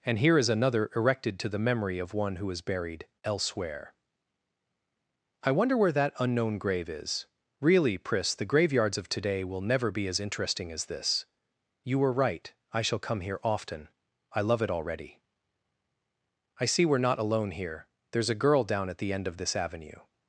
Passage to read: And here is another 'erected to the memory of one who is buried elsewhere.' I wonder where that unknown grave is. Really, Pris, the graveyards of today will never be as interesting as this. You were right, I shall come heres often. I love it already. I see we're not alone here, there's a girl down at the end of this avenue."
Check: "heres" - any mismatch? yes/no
yes